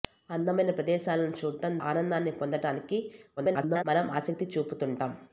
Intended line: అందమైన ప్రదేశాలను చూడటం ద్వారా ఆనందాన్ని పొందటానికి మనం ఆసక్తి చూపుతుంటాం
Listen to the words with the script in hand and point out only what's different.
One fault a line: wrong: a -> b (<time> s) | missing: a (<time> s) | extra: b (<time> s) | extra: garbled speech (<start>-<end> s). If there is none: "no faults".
missing: ద్వారా (1.8 s)
extra: garbled speech (3.4-3.8 s)